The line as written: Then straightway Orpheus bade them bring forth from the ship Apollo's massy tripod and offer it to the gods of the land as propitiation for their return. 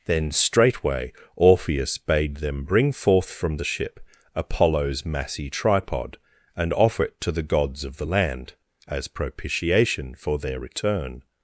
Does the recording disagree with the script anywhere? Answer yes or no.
no